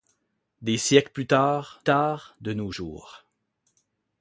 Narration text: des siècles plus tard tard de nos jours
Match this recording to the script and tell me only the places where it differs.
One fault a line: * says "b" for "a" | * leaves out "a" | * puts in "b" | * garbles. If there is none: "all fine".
all fine